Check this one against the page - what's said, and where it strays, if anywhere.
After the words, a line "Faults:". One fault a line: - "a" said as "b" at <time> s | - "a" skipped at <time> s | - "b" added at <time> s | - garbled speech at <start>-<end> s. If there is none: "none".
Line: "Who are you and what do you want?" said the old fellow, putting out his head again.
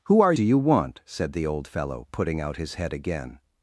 "Who are do you want?" said the old fellow, putting out his head again.
Faults:
- "you and what" skipped at 0.3 s